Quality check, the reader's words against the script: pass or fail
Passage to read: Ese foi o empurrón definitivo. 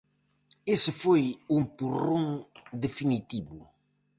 pass